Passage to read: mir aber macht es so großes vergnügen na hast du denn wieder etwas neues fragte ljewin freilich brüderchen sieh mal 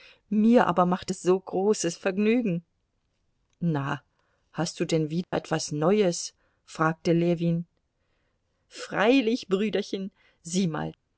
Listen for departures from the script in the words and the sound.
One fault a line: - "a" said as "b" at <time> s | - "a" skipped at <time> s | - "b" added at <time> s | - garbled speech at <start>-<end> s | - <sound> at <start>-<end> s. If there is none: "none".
- dropout at 5.2-5.3 s